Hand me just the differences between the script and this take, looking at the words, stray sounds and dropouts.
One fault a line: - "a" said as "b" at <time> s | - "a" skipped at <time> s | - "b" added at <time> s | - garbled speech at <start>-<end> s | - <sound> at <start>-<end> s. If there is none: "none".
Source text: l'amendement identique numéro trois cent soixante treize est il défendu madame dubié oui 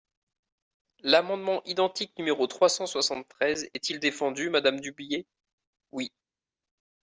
none